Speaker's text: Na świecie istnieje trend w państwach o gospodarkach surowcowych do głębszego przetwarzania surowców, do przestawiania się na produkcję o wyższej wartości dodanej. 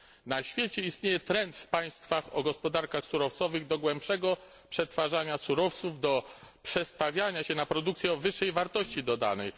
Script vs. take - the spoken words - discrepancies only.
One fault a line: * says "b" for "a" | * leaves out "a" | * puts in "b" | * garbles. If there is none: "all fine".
all fine